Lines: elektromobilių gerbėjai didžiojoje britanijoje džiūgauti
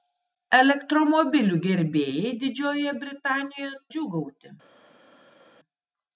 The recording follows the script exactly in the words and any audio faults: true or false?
true